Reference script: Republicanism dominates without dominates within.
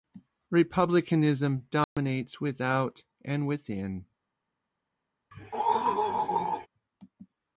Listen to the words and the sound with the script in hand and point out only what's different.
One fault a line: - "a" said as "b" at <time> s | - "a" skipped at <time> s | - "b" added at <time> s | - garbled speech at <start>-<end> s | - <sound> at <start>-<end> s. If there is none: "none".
- dropout at 1.8-2.0 s
- "dominates" said as "and" at 3.2 s
- throat clearing at 5.3-6.7 s